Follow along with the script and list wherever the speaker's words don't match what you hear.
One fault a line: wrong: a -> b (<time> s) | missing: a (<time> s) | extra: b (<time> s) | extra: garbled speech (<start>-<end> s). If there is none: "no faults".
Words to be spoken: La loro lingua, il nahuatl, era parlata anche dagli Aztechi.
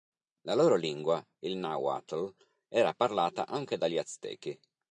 no faults